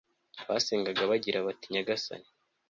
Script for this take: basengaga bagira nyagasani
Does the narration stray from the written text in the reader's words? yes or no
yes